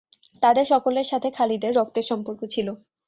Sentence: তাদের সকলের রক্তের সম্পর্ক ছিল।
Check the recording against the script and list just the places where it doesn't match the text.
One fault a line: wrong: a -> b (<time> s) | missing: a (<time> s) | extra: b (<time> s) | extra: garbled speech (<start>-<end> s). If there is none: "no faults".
extra: সাথে খালিদের (1.1 s)